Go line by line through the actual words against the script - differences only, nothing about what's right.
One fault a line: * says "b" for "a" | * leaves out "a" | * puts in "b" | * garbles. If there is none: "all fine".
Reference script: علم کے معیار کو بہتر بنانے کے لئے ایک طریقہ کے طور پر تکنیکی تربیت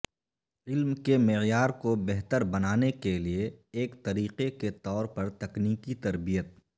all fine